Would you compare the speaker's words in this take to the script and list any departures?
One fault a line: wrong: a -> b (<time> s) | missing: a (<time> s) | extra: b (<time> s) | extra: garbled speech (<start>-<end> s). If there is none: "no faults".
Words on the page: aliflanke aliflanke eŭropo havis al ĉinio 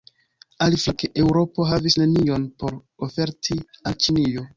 missing: aliflanke (1.1 s)
extra: nenion por oferti (2.0 s)